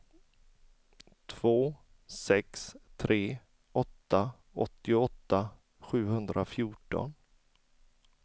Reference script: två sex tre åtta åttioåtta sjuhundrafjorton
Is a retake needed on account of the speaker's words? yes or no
no